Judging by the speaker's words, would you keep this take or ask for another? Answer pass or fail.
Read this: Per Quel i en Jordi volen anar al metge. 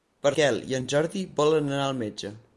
pass